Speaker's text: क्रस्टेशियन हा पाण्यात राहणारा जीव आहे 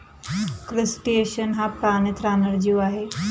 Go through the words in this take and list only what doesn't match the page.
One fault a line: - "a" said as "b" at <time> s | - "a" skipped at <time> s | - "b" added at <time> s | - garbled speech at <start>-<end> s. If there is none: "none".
none